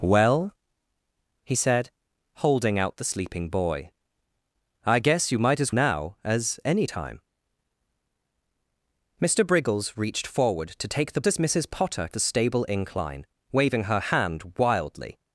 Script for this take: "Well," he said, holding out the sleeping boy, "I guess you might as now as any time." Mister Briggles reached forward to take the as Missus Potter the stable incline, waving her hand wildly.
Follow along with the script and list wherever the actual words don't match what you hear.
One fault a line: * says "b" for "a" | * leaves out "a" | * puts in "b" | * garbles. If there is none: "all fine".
all fine